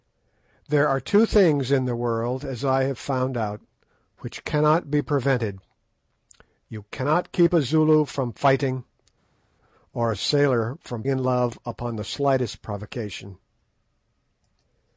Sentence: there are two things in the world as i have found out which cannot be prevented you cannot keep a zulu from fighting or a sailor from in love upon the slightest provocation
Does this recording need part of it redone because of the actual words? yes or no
no